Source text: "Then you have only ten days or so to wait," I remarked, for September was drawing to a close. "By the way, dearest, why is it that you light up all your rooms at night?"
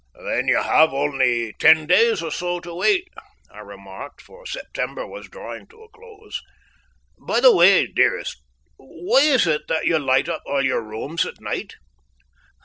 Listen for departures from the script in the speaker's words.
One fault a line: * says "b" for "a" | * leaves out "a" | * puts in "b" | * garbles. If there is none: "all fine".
all fine